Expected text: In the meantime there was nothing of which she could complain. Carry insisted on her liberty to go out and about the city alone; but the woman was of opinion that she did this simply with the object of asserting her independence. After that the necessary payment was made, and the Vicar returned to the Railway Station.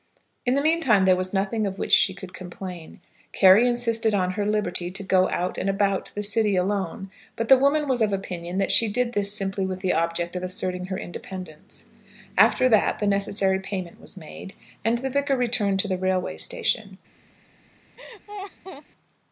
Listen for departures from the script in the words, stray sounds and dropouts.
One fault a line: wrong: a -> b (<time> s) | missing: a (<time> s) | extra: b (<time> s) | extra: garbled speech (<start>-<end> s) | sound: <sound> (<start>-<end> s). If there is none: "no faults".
sound: laugh (18.0-18.8 s)